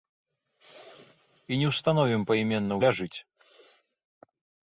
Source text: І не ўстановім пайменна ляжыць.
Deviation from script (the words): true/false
false